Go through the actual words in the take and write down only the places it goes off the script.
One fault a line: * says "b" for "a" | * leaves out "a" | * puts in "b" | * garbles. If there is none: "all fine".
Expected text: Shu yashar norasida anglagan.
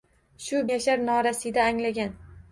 all fine